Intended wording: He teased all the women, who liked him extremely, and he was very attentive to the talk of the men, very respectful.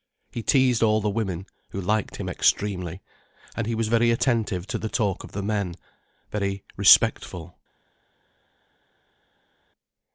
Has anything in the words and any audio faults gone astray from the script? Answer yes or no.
no